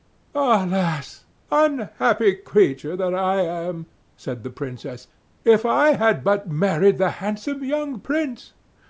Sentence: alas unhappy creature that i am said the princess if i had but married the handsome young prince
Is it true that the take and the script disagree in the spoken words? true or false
false